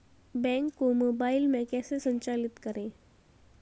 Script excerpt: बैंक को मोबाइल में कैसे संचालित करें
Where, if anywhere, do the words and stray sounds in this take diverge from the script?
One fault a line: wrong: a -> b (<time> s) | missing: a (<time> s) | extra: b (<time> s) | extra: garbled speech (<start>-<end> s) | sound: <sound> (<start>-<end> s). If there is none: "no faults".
no faults